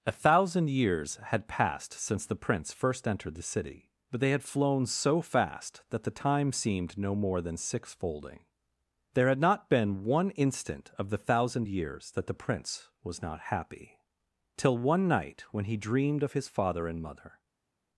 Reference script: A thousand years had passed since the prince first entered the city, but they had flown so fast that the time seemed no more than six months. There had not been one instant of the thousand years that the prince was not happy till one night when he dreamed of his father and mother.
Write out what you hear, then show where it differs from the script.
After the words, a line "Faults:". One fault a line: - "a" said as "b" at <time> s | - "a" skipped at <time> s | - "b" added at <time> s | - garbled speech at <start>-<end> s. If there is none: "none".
A thousand years had passed since the prince first entered the city, but they had flown so fast that the time seemed no more than six folding. There had not been one instant of the thousand years that the prince was not happy till one night when he dreamed of his father and mother.
Faults:
- "months" said as "folding" at 7.9 s